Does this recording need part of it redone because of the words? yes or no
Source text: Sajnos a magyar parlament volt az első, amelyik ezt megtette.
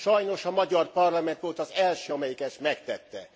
no